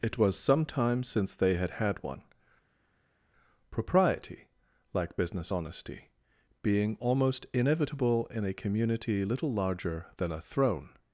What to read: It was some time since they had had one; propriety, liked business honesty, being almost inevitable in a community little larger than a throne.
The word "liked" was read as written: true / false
false